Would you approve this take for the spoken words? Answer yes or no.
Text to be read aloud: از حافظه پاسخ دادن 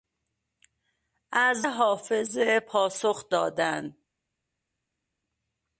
yes